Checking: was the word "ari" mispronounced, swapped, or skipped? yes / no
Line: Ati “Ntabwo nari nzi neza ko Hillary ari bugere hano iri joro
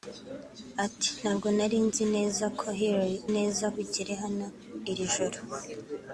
yes